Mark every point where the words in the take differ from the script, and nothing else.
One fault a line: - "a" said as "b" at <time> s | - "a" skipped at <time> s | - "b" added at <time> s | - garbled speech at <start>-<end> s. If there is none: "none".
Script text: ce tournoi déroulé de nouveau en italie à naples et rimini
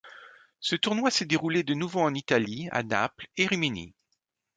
- "s'est" added at 1.1 s